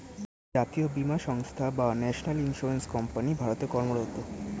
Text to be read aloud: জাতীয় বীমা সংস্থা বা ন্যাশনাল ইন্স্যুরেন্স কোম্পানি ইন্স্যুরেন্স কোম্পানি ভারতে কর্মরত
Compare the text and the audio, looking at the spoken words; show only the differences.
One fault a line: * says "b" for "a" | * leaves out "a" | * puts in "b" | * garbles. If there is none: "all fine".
* leaves out "ইন্স্যুরেন্স কোম্পানি"